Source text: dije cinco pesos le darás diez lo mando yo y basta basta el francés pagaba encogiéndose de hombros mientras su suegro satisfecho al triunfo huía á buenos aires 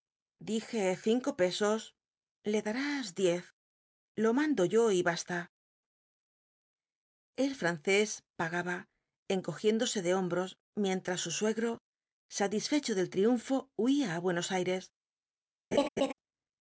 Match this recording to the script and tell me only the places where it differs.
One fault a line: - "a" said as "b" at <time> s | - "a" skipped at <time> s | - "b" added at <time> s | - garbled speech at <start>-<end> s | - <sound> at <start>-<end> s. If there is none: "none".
- "basta" skipped at 5.4 s
- "al" said as "del" at 12.9 s
- laugh at 15.7-16.1 s